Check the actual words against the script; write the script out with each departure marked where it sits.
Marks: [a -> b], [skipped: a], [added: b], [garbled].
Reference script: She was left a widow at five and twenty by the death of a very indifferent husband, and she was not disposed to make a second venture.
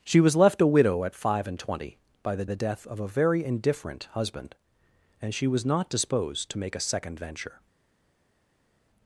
She was left a widow at five and twenty by the [added: the] death of a very indifferent husband, and she was not disposed to make a second venture.